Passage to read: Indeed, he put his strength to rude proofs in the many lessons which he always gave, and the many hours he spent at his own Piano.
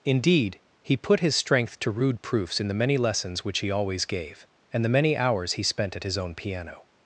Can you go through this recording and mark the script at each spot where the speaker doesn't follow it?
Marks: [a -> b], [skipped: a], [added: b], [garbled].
Indeed, he put his strength to rude proofs in the many lessons which he always gave, and the many hours he spent at his own Piano.